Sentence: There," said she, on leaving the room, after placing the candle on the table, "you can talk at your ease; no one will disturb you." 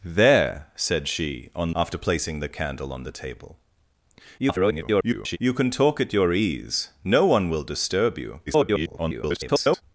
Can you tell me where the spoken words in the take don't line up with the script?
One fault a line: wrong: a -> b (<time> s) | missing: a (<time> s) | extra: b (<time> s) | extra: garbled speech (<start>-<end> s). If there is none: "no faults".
missing: leaving the room (1.8 s)
extra: garbled speech (4.4-5.4 s)
extra: garbled speech (8.5-9.8 s)